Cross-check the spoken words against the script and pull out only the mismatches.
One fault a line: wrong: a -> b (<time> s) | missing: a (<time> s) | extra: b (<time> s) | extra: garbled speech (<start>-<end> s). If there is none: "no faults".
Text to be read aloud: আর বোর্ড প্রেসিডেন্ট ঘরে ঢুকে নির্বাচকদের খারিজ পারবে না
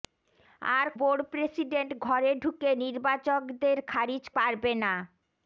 no faults